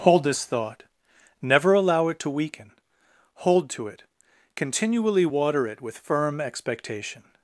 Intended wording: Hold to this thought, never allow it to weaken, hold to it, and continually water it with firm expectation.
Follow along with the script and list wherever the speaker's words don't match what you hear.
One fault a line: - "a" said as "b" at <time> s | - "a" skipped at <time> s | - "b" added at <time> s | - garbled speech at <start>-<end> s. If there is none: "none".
- "to" skipped at 0.2 s
- "and" skipped at 4.0 s